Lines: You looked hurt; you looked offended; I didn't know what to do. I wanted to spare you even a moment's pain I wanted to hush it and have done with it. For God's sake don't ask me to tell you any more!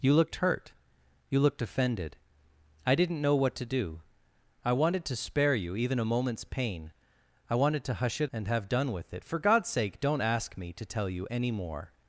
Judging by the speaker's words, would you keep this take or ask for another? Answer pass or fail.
pass